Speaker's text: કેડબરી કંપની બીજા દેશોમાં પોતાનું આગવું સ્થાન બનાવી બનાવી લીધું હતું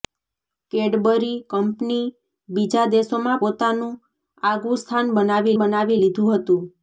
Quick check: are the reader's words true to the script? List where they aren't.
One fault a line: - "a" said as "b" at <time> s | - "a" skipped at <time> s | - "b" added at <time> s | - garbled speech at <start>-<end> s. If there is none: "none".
none